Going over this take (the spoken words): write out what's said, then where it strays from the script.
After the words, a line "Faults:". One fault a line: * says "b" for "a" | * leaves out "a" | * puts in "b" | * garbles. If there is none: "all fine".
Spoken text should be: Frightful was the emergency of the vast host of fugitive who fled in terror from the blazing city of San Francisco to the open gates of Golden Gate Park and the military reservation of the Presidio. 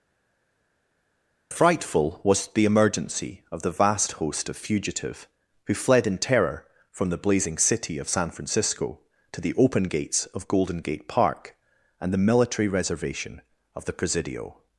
Frightful was the emergency of the vast host of fugitive who fled in terror from the blazing city of San Francisco to the open gates of Golden Gate Park and the military reservation of the Presidio.
Faults:
all fine